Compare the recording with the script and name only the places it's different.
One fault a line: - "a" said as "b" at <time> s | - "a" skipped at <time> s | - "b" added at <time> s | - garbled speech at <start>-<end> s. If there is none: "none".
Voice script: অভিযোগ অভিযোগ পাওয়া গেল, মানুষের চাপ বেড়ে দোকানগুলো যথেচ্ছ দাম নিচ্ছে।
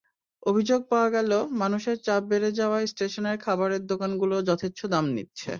- "অভিযোগ" skipped at 0.8 s
- "যাওয়ায় স্টেশনের খাবারের" added at 2.6 s